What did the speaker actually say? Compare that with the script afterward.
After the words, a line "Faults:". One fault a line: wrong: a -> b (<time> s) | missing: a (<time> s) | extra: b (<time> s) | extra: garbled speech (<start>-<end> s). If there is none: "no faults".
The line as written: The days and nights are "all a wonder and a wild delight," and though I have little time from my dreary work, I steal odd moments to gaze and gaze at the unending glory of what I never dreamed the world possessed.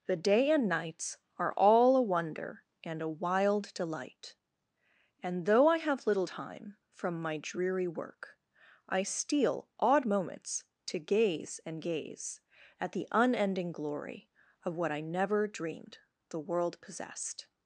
The day and nights are "all a wonder and a wild delight," and though I have little time from my dreary work, I steal odd moments to gaze and gaze at the unending glory of what I never dreamed the world possessed.
Faults:
wrong: days -> day (0.1 s)